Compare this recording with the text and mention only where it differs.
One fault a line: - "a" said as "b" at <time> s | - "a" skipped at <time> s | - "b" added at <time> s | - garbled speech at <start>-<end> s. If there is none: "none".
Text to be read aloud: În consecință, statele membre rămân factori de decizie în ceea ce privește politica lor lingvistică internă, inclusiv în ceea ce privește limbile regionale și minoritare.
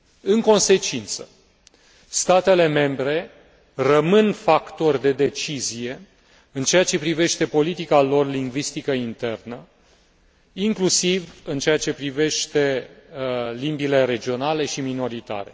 none